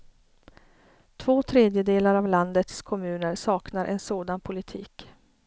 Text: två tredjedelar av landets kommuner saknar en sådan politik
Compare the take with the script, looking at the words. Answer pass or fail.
pass